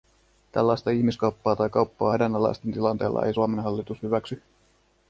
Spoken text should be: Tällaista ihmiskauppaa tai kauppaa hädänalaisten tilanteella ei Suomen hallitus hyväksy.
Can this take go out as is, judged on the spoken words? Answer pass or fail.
pass